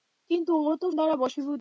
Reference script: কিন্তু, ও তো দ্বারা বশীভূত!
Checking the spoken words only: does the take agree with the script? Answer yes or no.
yes